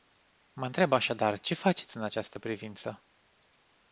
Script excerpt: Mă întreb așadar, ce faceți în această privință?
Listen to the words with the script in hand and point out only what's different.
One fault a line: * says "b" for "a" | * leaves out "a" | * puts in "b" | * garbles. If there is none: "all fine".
all fine